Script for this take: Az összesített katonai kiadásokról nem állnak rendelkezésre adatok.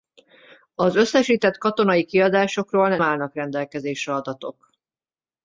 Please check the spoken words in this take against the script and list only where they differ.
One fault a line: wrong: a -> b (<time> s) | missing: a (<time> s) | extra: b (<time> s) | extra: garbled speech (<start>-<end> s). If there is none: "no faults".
missing: nem (3.0 s)